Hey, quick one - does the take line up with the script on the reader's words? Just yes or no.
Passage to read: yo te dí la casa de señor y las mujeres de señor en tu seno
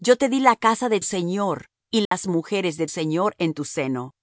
yes